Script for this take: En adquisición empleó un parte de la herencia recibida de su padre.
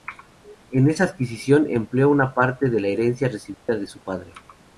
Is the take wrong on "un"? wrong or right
wrong